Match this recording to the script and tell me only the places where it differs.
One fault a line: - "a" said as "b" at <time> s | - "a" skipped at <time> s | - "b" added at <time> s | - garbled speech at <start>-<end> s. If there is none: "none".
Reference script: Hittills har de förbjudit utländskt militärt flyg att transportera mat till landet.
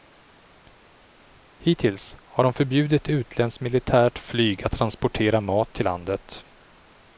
none